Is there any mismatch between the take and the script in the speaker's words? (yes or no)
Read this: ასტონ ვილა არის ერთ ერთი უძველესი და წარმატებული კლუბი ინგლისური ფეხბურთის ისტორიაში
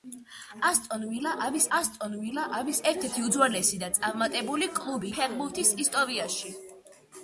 yes